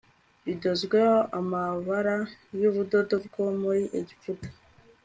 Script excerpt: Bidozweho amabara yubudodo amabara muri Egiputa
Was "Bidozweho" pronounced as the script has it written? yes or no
yes